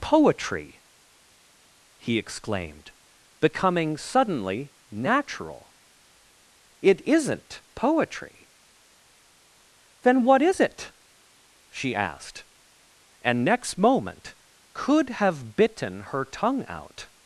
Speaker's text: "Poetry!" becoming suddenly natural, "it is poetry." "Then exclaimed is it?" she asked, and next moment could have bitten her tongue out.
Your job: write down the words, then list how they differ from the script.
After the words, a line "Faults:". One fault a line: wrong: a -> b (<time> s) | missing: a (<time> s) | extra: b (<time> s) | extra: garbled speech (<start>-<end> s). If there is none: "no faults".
"Poetry!" he exclaimed, becoming suddenly natural, "it isn't poetry." "Then what is it?" she asked, and next moment could have bitten her tongue out.
Faults:
extra: he exclaimed (2.0 s)
wrong: is -> isn't (7.0 s)
wrong: exclaimed -> what (10.2 s)